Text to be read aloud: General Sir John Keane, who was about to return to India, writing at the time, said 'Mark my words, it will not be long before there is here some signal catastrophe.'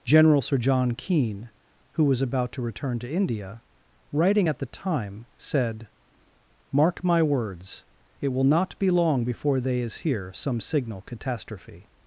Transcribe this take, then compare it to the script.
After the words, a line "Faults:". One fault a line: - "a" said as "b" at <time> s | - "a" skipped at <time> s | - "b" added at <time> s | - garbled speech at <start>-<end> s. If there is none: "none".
General Sir John Keane, who was about to return to India, writing at the time, said 'Mark my words, it will not be long before they is here some signal catastrophe.'
Faults:
- "there" said as "they" at 9.6 s